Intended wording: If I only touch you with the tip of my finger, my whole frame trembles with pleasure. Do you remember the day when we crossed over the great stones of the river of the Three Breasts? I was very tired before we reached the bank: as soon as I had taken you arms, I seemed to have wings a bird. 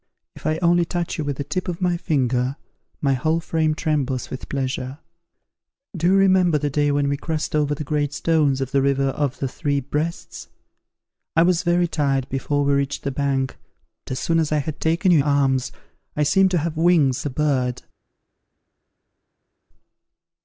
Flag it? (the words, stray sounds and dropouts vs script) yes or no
no